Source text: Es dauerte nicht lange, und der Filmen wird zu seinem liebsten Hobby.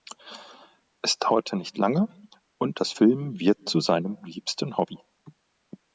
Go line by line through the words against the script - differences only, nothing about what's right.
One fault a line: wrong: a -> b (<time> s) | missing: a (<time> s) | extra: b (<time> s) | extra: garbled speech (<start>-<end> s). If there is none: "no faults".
wrong: der -> das (2.8 s)